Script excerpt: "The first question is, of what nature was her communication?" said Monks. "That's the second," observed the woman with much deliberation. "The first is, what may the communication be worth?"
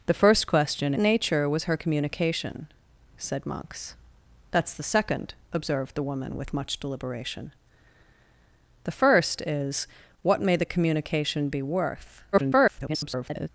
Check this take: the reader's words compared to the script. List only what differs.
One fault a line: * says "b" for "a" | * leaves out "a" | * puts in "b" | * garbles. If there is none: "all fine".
* leaves out "is of what"
* garbles